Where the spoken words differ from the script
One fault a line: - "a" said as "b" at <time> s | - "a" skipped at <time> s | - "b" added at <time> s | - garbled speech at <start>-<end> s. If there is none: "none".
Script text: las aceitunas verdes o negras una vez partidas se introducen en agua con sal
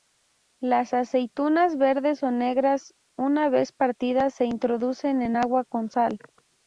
none